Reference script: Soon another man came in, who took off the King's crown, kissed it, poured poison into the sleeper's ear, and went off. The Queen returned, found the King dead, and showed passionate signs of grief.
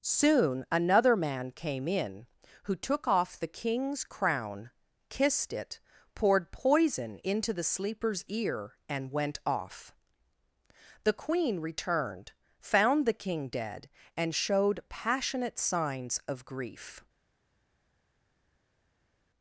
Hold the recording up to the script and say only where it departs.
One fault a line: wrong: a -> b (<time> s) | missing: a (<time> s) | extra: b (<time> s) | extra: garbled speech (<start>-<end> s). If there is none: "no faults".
no faults